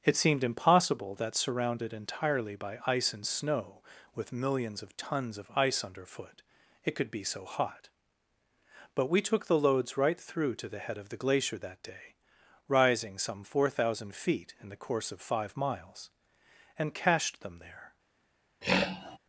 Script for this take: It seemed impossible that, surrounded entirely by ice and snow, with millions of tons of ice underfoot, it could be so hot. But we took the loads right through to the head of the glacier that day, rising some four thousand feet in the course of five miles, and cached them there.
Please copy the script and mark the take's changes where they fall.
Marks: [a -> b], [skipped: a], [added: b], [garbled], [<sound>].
It seemed impossible that, surrounded entirely by ice and snow, with millions of tons of ice underfoot, it could be so hot. But we took the loads right through to the head of the glacier that day, rising some four thousand feet in the course of five miles, and cached them there. [throat clearing]